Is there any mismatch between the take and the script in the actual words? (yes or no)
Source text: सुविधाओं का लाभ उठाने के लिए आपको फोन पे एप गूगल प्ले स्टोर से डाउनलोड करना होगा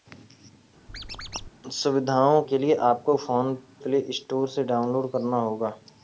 yes